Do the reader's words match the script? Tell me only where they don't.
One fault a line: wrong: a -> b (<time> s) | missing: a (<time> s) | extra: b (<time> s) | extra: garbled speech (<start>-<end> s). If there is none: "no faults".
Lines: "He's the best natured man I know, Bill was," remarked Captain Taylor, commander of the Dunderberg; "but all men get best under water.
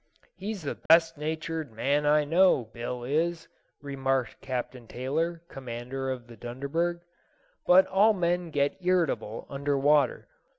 wrong: was -> is (3.0 s)
wrong: best -> irritable (8.8 s)